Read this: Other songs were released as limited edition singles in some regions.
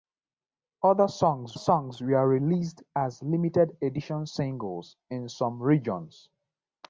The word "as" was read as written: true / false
true